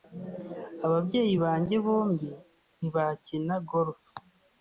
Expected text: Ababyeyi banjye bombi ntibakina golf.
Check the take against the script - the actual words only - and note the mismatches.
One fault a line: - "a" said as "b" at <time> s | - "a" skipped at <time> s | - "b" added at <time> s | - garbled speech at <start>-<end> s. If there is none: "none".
none